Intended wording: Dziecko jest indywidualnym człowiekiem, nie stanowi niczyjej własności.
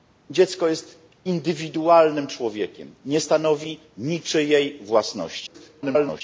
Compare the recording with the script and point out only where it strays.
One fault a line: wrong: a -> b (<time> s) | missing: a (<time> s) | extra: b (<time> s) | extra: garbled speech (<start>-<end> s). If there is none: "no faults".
extra: garbled speech (5.5-6.2 s)